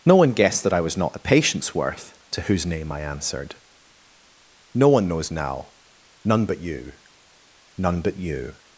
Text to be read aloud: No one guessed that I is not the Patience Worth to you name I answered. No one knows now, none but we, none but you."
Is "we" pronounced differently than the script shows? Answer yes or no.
yes